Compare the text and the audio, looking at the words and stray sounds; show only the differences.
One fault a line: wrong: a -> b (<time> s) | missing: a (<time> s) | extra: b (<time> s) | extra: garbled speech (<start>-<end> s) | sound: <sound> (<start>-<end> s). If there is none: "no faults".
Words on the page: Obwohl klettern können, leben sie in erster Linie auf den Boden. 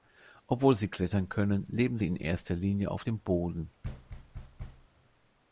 extra: sie (0.8 s)
wrong: den -> dem (3.0 s)
sound: thud (3.8-4.9 s)